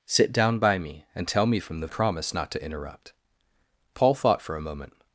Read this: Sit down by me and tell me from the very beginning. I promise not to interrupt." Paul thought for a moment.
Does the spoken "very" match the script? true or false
false